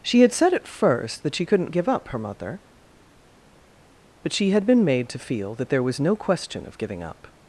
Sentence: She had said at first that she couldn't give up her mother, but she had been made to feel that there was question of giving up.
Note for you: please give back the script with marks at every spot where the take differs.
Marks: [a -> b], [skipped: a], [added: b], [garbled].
She had said at first that she couldn't give up her mother, but she had been made to feel that there was [added: no] question of giving up.